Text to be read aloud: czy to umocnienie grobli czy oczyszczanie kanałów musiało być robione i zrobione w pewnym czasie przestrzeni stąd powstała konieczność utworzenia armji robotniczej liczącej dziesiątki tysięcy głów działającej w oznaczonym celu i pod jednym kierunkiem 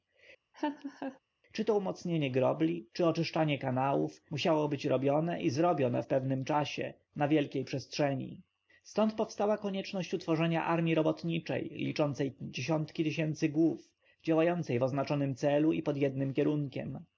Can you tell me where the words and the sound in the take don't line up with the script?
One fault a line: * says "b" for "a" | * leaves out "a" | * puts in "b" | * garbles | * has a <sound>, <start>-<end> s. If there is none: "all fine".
* has a laugh, 0.5-1.2 s
* puts in "na wielkiej"